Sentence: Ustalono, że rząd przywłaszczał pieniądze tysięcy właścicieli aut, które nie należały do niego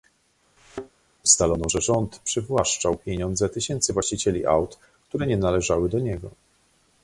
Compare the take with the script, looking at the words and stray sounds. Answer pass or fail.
fail